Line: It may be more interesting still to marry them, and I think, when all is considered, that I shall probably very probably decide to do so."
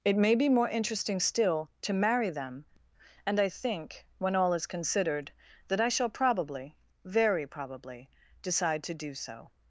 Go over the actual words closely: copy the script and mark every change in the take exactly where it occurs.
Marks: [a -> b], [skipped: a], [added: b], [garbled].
It may be more interesting still to marry them, and I think, when all is considered, that I shall probably very probably decide to do so."